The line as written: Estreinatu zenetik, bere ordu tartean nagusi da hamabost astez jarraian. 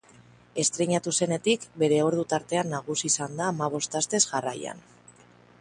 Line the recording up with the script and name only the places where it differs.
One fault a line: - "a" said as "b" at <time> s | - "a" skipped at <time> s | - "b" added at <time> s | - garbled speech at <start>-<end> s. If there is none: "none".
- "izan" added at 3.1 s